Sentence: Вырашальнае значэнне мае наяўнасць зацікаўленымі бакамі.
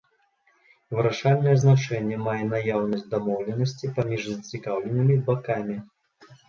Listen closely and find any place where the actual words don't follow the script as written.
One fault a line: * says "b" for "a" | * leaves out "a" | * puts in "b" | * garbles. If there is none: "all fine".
* puts in "дамоўленасці паміж"